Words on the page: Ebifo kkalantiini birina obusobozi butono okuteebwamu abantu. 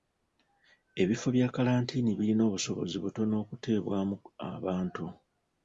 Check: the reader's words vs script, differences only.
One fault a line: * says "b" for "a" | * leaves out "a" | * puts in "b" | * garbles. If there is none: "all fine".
* puts in "bya"